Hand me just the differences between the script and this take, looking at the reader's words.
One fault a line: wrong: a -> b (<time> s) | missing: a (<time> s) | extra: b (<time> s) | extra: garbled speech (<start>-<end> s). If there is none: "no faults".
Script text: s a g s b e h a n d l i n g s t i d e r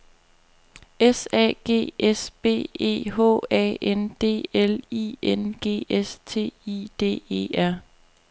no faults